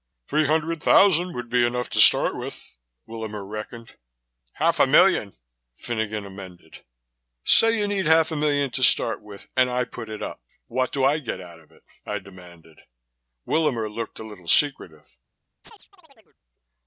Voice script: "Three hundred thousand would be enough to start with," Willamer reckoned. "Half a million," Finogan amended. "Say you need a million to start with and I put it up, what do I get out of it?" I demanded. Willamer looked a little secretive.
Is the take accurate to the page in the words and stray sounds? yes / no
no